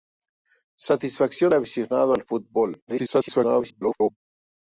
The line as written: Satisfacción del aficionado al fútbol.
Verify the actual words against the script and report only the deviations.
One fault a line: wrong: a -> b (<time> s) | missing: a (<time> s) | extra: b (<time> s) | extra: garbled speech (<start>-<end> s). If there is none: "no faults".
missing: del (1.5 s)
extra: garbled speech (2.9-4.2 s)